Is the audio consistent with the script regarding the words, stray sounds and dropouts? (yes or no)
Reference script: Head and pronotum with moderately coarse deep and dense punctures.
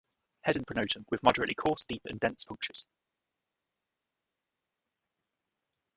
yes